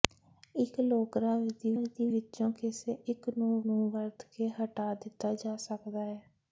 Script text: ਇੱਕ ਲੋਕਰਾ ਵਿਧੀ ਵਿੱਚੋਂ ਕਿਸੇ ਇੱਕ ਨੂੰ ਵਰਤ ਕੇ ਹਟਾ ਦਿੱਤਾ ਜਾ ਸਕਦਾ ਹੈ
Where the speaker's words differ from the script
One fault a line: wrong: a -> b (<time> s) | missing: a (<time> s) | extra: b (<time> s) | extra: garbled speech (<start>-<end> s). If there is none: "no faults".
extra: ਵਿਧੀ (1.7 s)
extra: ਨੂੰ (3.6 s)